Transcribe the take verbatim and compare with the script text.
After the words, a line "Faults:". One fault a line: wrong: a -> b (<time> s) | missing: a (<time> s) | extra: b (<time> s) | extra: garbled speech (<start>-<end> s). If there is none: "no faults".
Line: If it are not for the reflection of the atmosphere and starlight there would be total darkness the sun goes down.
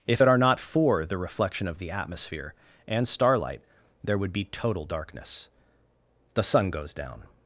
If it are not for the reflection of the atmosphere and starlight there would be total darkness the sun goes down.
Faults:
no faults